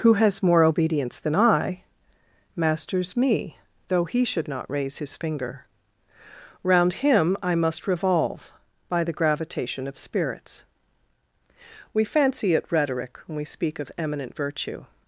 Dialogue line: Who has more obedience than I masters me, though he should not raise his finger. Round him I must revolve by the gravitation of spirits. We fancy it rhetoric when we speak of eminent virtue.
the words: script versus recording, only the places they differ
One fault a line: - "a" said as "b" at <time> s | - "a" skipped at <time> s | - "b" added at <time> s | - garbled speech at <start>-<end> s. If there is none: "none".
none